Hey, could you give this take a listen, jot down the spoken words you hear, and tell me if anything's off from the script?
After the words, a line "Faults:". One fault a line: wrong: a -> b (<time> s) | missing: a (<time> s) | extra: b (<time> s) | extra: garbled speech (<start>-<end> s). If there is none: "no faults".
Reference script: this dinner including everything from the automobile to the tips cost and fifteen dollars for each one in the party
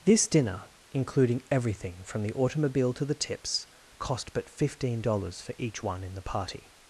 this dinner including everything from the automobile to the tips cost but fifteen dollars for each one in the party
Faults:
wrong: and -> but (4.3 s)